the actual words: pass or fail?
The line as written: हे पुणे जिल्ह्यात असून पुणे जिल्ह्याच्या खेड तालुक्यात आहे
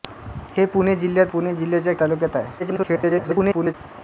fail